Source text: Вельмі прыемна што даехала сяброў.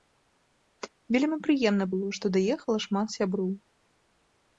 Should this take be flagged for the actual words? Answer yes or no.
yes